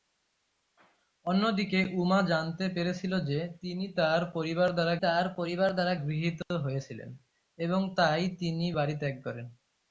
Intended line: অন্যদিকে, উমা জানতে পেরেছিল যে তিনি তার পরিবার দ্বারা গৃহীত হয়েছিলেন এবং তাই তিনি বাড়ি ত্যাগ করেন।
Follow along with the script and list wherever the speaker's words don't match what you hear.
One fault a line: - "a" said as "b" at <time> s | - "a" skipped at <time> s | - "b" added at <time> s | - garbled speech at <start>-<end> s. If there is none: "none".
- "তার পরিবার দ্বারা" added at 5.0 s